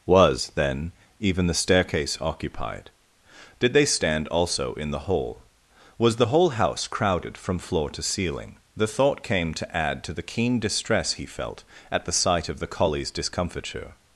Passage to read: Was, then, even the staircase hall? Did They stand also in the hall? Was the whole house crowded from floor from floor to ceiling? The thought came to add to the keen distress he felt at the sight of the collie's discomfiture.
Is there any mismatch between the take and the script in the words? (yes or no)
yes